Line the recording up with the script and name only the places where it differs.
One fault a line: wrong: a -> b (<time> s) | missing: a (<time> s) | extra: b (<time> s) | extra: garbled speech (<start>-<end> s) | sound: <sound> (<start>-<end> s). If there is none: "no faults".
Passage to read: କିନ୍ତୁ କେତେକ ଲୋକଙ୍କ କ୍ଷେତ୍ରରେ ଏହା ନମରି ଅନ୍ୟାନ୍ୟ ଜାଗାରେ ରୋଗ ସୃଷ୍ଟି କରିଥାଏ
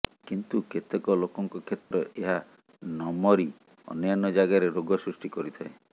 sound: dropout (1.8-1.9 s)